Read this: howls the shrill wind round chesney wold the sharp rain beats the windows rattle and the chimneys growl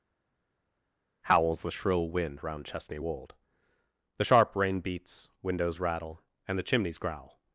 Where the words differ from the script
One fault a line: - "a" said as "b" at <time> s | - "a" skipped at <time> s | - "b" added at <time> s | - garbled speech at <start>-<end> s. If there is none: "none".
- "the" skipped at 5.3 s